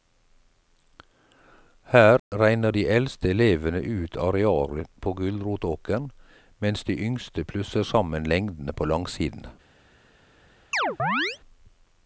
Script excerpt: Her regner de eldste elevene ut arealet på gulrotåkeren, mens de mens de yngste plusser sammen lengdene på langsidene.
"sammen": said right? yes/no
yes